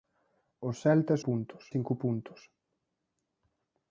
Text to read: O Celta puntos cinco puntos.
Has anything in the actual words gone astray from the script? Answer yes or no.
no